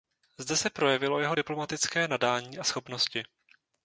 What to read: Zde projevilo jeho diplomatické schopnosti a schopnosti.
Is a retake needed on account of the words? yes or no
yes